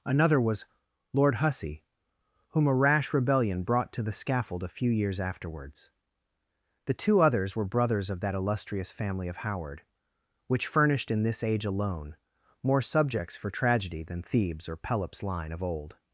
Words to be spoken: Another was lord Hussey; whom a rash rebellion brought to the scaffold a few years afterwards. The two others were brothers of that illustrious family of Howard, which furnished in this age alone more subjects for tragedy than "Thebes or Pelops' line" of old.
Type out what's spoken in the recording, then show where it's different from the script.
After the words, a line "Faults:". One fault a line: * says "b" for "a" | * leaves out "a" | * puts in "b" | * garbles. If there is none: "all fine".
Another was lord Hussey; whom a rash rebellion brought to the scaffold a few years afterwards. The two others were brothers of that illustrious family of Howard, which furnished in this age alone more subjects for tragedy than "Thebes or Pelops' line" of old.
Faults:
all fine